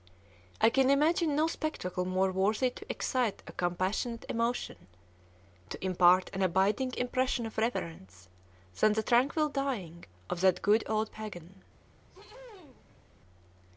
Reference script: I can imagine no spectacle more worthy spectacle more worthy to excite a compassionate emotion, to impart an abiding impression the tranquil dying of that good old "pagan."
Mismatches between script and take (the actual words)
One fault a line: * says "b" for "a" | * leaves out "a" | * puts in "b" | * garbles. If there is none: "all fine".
* leaves out "spectacle more worthy"
* puts in "of reverence than"